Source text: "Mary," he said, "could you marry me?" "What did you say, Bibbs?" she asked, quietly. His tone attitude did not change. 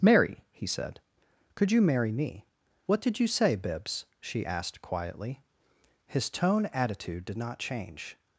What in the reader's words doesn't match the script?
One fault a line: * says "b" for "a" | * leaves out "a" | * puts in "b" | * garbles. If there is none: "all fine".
all fine